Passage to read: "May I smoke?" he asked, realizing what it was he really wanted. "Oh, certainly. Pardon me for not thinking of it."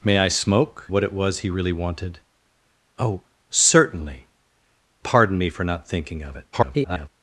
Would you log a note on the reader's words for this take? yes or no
yes